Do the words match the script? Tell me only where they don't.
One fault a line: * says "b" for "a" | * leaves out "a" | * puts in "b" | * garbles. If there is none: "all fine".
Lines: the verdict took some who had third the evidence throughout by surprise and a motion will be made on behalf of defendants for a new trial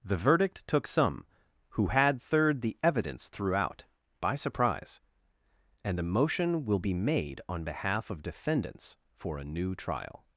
all fine